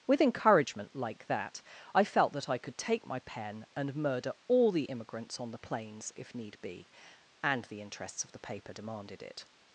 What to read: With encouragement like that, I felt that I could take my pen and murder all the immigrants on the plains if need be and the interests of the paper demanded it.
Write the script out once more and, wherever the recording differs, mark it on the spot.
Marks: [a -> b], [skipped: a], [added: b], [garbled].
With encouragement like that, I felt that I could take my pen and murder all the immigrants on the plains if need be and the interests of the paper demanded it.